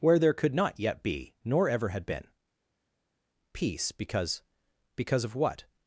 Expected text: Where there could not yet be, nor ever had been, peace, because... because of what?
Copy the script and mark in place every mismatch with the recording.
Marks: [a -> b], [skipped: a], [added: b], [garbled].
Where there could not yet be, nor ever had been, peace, because... because of what?